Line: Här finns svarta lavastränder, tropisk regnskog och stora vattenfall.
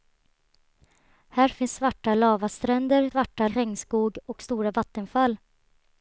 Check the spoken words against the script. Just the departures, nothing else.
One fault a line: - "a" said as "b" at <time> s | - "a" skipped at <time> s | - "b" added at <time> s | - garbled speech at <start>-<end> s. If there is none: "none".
- "tropisk" said as "svarta" at 3.1 s